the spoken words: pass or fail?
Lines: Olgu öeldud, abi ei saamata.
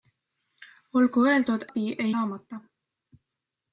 pass